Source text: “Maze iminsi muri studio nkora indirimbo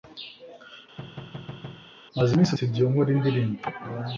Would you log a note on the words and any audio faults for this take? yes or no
yes